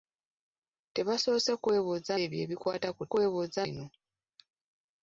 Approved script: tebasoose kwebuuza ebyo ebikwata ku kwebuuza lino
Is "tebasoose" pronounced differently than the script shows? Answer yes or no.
no